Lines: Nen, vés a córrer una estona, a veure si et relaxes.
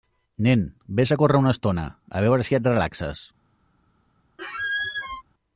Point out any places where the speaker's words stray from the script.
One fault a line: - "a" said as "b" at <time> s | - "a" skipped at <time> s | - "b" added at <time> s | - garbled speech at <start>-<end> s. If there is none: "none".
none